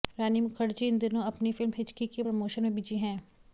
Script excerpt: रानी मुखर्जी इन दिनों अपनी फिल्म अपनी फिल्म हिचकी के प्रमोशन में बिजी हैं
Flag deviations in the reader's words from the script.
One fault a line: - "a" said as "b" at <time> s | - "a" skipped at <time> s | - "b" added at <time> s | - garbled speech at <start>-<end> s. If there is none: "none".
- "अपनी फिल्म" skipped at 1.7 s